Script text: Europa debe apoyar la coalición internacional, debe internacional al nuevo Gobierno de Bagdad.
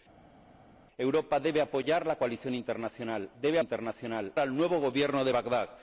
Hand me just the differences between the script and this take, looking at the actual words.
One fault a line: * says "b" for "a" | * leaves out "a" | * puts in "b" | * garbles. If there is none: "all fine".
all fine